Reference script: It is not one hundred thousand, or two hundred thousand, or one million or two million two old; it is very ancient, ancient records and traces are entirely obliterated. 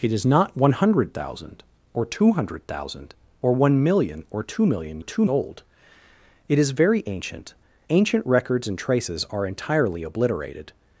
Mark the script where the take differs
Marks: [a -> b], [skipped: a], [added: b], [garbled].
It is not one hundred thousand, or two hundred thousand, or one million or two million two old; it is very ancient, ancient records and traces are entirely obliterated.